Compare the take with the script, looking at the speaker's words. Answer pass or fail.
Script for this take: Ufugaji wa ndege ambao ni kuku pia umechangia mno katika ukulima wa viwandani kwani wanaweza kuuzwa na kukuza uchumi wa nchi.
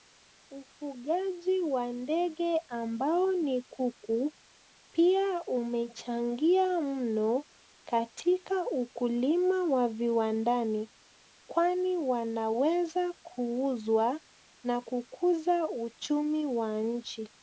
pass